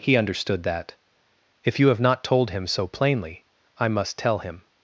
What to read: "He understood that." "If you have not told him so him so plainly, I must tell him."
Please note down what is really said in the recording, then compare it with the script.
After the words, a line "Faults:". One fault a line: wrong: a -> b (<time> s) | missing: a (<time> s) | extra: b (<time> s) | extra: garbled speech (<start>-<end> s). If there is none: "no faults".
"He understood that." "If you have not told him so plainly, I must tell him."
Faults:
missing: him so (2.9 s)